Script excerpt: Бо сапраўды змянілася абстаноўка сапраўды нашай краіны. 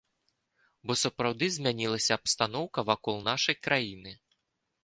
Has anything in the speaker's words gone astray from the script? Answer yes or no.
yes